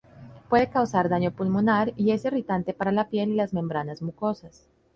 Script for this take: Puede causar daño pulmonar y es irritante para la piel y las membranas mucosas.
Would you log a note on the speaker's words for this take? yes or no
no